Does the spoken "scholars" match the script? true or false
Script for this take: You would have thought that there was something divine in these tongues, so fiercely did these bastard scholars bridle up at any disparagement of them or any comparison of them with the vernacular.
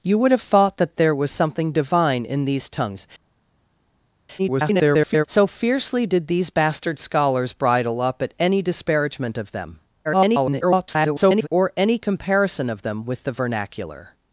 true